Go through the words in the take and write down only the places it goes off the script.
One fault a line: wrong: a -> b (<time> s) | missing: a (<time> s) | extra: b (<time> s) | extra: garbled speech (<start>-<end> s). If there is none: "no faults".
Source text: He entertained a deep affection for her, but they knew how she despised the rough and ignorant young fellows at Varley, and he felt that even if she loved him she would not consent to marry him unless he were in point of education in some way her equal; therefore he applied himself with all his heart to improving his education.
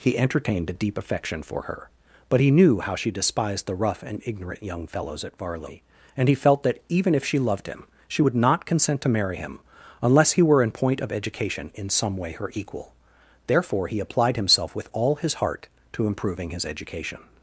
wrong: they -> he (2.4 s)